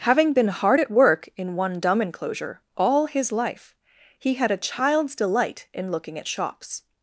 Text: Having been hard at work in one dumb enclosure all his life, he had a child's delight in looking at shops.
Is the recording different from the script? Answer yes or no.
no